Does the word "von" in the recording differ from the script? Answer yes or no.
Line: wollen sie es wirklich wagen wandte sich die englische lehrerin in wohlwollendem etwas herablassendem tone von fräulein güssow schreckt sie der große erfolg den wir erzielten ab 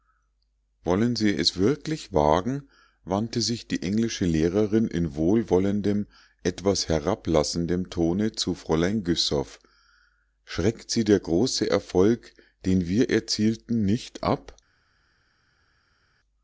yes